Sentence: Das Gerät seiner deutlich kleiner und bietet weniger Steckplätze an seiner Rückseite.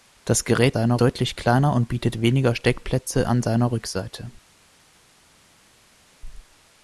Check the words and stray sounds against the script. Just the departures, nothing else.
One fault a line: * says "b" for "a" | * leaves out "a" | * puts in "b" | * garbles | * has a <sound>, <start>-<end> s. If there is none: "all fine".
all fine